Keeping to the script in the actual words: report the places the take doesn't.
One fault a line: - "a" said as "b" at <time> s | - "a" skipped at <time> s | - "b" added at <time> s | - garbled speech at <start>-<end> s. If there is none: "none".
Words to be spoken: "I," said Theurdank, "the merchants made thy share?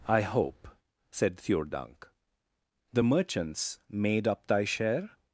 - "hope" added at 0.2 s
- "up" added at 4.3 s